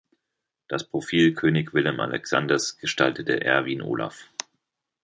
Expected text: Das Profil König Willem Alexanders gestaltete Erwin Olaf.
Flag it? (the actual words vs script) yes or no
no